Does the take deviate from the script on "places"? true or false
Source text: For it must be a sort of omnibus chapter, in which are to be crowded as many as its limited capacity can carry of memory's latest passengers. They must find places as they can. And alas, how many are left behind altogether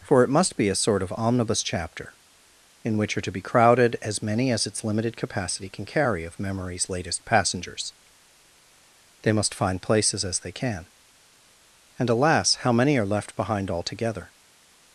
false